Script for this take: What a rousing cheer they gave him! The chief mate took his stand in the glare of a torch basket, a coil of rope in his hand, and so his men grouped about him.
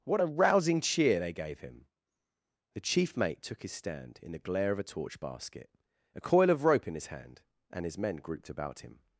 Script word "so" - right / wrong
wrong